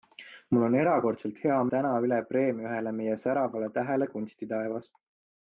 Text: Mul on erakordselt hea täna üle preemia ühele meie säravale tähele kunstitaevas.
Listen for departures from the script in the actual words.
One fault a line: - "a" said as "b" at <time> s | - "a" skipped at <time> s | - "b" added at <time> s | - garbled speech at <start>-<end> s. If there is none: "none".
none